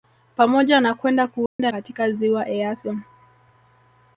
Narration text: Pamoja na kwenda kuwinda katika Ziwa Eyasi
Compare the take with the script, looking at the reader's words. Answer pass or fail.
pass